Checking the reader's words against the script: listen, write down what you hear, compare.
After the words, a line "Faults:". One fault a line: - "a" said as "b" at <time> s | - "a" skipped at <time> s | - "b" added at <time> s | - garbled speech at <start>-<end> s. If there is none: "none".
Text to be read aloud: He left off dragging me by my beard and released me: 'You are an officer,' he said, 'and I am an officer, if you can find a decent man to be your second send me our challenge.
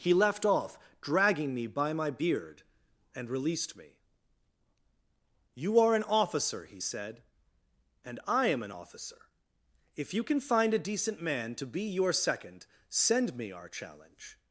He left off dragging me by my beard and released me: 'You are an officer,' he said, 'and I am an officer, if you can find a decent man to be your second send me our challenge.
Faults:
none